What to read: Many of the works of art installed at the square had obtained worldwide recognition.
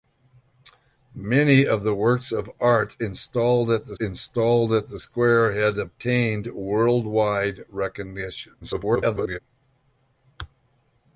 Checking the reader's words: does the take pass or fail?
fail